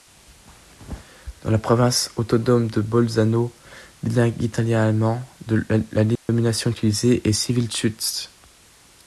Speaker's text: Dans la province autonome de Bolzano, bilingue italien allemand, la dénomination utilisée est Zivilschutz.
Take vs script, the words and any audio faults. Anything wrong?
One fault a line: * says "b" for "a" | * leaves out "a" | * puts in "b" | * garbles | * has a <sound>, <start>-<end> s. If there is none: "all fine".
* has a dropout, 6.2-6.3 s